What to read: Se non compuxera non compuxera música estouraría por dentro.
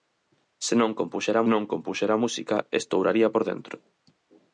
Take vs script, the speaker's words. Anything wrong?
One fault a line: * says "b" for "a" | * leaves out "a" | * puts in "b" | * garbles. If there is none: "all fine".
all fine